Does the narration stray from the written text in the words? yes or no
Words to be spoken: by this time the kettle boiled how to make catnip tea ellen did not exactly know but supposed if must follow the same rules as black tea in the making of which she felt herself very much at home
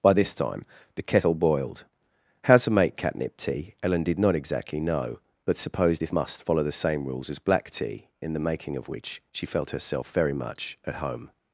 no